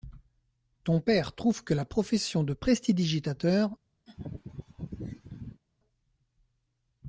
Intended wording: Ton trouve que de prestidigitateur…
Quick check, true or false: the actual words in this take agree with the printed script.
false